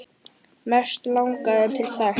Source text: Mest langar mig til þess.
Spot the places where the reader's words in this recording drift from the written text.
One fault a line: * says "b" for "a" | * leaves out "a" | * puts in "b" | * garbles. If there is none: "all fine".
* leaves out "mig"